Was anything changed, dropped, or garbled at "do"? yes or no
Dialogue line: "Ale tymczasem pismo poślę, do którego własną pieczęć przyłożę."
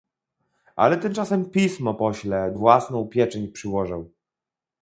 yes